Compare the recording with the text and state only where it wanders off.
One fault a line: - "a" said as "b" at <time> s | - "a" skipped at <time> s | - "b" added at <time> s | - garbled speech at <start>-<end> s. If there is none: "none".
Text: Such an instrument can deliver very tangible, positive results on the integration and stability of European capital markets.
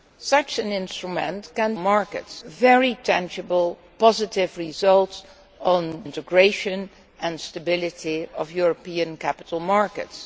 - "deliver" said as "markets" at 1.8 s
- "the" skipped at 6.0 s